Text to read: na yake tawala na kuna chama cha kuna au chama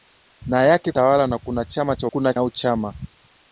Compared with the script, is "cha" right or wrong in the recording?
right